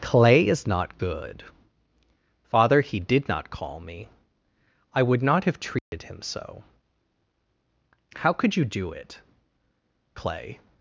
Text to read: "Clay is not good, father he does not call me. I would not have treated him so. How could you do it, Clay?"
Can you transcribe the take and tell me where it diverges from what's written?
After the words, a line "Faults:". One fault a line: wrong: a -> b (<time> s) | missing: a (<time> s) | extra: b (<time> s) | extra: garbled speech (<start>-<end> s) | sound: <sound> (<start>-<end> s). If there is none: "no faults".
"Clay is not good, father he did not call me. I would not have treated him so. How could you do it, Clay?"
Faults:
wrong: does -> did (3.0 s)
sound: dropout (5.8-5.9 s)